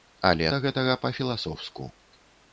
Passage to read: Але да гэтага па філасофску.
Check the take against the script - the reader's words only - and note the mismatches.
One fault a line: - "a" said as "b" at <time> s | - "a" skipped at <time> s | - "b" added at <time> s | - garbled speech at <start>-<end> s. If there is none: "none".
none